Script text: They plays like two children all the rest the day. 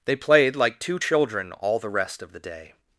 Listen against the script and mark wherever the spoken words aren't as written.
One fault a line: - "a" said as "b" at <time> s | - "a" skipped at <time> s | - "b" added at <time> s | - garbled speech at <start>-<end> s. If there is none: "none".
- "plays" said as "played" at 0.1 s
- "of" added at 2.2 s